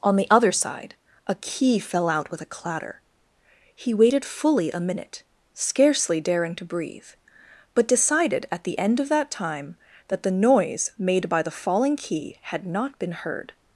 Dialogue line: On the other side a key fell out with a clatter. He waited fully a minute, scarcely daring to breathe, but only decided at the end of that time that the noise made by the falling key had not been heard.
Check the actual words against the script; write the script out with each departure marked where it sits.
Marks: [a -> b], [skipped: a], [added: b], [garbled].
On the other side a key fell out with a clatter. He waited fully a minute, scarcely daring to breathe, but [skipped: only] decided at the end of that time that the noise made by the falling key had not been heard.